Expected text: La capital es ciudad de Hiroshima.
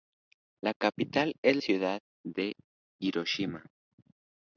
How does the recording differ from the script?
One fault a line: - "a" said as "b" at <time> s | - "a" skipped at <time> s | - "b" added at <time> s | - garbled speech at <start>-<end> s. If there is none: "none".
none